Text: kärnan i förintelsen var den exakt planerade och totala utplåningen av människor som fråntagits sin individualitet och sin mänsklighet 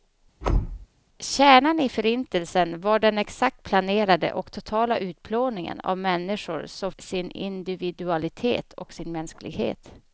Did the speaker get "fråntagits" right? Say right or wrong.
wrong